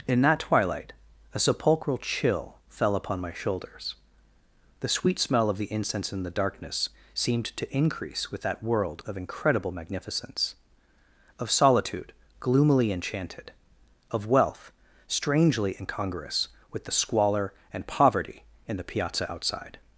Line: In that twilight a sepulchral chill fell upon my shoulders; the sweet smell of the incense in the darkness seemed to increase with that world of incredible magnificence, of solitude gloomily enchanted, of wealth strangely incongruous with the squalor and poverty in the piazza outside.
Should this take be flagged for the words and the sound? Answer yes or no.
no